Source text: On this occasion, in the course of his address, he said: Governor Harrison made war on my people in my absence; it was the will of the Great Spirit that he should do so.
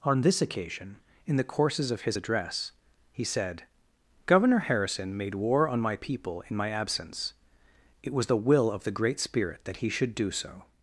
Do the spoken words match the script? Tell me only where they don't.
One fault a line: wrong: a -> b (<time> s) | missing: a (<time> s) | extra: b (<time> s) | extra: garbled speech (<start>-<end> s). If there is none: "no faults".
wrong: course -> courses (1.4 s)